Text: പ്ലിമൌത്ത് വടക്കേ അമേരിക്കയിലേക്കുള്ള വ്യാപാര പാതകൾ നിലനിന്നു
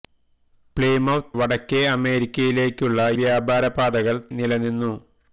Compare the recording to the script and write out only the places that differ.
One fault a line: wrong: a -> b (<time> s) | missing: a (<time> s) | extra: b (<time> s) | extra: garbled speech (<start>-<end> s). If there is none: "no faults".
no faults